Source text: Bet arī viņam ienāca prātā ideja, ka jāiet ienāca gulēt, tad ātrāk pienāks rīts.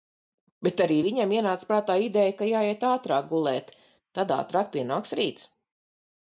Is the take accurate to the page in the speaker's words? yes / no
no